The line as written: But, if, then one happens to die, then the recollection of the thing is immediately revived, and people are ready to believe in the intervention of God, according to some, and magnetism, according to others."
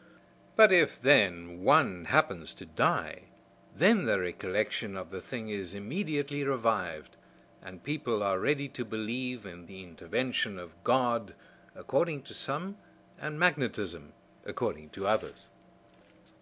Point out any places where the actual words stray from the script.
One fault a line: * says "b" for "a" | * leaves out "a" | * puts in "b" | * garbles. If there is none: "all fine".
all fine